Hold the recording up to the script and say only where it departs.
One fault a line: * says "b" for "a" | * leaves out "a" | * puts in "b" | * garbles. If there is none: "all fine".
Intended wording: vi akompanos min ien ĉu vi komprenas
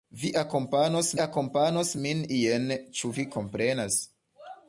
* puts in "akompanos"